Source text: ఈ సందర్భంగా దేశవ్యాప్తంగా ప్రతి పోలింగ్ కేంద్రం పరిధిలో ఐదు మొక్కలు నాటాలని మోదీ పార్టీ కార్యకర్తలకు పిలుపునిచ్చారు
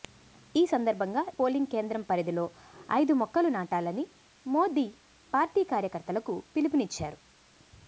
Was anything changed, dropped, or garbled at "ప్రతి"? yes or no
yes